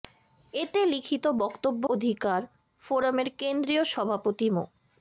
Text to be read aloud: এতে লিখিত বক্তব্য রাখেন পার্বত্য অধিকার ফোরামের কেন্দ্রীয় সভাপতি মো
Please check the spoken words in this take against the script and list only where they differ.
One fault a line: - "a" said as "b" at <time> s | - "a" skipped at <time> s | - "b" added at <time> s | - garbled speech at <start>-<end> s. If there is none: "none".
- "রাখেন পার্বত্য" skipped at 1.8 s